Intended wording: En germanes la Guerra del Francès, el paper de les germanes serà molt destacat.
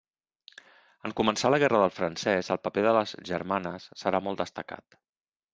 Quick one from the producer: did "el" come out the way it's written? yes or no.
yes